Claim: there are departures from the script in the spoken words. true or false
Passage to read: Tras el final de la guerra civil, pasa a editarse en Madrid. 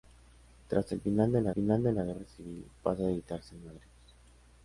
true